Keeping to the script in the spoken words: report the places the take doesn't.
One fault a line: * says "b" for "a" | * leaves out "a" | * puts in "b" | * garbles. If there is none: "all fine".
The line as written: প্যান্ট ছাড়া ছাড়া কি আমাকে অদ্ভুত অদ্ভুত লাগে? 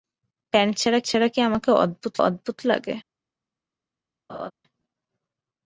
all fine